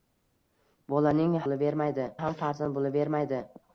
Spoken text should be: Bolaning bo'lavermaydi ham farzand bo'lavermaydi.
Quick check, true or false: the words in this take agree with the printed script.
true